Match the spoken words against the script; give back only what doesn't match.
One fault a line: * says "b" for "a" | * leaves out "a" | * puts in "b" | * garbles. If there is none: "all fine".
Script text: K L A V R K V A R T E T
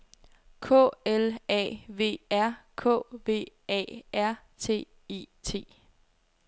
all fine